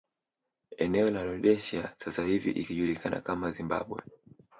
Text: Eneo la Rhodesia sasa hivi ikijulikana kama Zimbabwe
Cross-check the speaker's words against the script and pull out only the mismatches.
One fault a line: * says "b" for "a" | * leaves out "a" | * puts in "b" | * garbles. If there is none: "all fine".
all fine